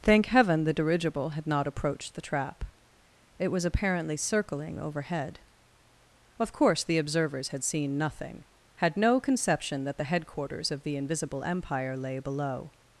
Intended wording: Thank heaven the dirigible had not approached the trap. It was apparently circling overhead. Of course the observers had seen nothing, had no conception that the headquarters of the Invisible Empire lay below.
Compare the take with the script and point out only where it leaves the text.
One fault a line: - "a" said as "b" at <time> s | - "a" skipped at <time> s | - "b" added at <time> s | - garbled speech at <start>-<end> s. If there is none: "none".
none